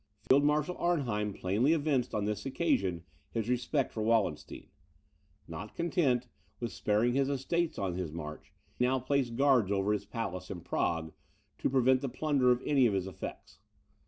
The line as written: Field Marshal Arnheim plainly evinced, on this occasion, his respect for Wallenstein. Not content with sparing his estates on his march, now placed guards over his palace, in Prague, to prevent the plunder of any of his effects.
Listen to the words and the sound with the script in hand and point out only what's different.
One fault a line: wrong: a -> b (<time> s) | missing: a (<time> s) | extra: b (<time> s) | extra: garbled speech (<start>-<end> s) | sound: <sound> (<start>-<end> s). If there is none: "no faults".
sound: dropout (0.3-0.3 s)